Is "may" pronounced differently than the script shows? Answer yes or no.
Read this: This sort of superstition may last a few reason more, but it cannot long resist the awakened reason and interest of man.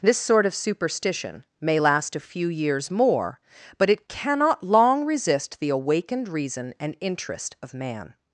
no